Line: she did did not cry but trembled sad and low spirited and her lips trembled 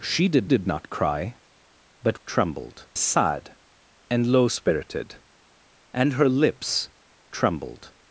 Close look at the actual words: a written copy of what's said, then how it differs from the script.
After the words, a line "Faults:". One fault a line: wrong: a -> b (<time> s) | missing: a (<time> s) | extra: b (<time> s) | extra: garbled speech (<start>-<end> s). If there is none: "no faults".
she did did not cry but trembled sad and low spirited and her lips trembled
Faults:
no faults